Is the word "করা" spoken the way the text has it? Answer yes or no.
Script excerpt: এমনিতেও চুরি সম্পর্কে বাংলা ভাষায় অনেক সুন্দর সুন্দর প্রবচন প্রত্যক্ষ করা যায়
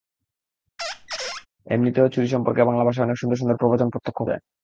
no